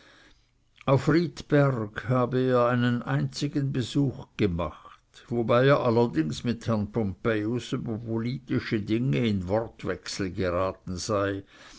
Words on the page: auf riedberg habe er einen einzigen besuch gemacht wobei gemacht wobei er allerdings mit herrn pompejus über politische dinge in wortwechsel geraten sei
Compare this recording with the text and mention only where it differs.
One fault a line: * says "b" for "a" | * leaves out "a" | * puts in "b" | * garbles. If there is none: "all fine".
* leaves out "gemacht wobei"